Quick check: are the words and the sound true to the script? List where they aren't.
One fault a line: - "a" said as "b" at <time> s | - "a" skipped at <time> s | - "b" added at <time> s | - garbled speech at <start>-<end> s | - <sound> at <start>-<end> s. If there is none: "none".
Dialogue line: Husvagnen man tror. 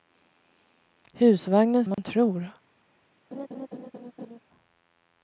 - dropout at 1.9-2.0 s
- laugh at 3.3-4.4 s